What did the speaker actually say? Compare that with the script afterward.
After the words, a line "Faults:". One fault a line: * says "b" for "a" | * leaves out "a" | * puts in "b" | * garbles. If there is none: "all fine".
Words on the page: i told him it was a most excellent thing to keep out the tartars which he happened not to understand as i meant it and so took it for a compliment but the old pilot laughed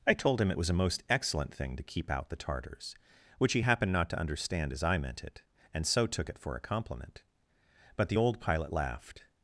i told him it was a most excellent thing to keep out the tartars which he happened not to understand as i meant it and so took it for a compliment but the old pilot laughed
Faults:
all fine